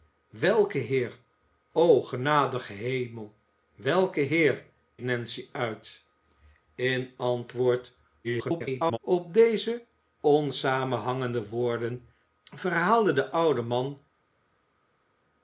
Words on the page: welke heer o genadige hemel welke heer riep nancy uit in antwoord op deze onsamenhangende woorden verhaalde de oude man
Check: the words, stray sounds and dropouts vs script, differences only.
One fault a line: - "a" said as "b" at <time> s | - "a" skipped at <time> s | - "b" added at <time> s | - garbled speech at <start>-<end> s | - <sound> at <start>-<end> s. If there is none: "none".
- "riep" skipped at 4.7 s
- garbled speech at 8.2-9.0 s